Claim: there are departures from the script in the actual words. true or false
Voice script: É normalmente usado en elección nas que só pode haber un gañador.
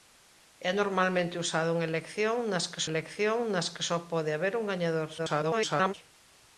true